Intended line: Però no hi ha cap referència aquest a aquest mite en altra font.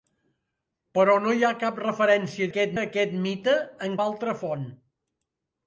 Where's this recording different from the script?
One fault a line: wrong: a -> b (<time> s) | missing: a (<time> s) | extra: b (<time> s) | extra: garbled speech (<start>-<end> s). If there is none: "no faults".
no faults